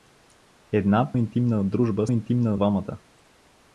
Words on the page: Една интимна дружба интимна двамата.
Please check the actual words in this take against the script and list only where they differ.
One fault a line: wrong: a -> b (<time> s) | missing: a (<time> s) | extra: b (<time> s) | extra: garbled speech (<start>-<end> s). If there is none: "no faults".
no faults